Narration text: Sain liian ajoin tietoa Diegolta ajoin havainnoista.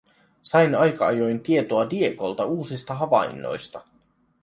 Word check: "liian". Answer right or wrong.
wrong